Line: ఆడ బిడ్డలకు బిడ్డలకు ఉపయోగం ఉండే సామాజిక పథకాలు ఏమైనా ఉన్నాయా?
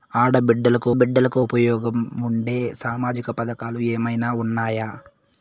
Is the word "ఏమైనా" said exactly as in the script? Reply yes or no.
yes